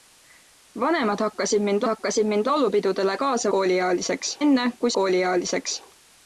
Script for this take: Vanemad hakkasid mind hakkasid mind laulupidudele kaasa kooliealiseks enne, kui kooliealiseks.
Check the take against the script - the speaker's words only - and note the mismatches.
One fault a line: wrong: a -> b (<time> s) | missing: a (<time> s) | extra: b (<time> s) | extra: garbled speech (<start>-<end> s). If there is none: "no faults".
no faults